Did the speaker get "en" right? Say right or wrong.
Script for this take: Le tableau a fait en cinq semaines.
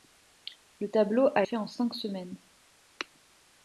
right